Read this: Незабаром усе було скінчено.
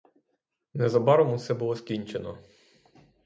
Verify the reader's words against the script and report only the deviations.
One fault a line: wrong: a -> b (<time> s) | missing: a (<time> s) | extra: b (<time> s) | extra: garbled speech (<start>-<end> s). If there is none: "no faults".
no faults